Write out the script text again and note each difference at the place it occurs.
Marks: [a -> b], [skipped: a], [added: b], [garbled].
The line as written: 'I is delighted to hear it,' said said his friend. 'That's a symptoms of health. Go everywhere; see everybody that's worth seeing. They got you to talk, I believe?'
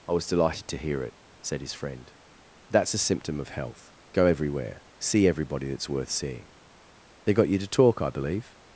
'I [is -> was] delighted to hear it,' said [skipped: said] his friend. 'That's a [symptoms -> symptom] of health. Go everywhere; see everybody that's worth seeing. They got you to talk, I believe?'